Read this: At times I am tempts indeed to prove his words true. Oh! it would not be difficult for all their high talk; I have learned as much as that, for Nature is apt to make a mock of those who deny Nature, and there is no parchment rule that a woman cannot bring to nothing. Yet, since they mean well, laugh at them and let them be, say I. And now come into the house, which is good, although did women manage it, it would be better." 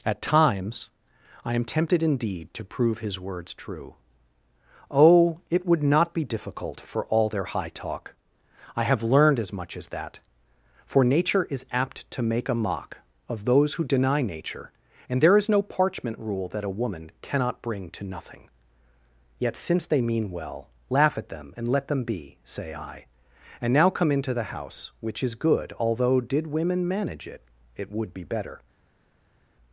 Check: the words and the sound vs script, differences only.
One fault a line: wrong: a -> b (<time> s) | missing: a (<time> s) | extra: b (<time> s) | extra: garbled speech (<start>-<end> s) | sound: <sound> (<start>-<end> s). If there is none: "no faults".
wrong: tempts -> tempted (1.6 s)